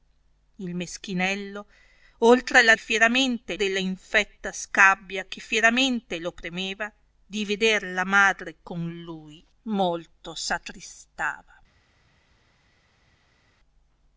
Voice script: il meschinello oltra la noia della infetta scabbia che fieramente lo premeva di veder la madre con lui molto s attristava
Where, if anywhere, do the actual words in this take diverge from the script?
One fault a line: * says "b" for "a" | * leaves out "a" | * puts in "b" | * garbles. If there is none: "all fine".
* says "fieramente" for "noia"